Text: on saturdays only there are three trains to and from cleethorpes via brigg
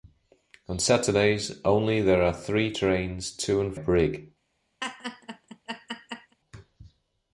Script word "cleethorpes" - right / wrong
wrong